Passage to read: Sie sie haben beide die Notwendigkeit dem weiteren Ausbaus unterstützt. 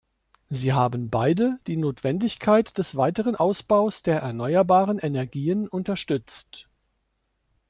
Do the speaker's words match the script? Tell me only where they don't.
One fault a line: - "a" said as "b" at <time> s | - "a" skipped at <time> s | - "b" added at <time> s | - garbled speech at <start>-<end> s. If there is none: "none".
- "sie" skipped at 0.7 s
- "dem" said as "des" at 2.8 s
- "der erneuerbaren Energien" added at 4.0 s